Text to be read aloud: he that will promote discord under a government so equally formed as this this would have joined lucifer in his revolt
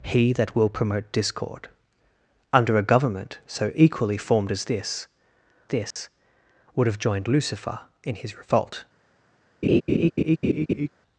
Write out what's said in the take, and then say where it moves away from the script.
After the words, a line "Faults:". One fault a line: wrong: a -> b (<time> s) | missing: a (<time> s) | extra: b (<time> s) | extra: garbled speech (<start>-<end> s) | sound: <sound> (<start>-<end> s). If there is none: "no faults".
he that will promote discord under a government so equally formed as this this would have joined lucifer in his revolt
Faults:
sound: dropout (5.9-6.0 s)
sound: laugh (9.6-10.9 s)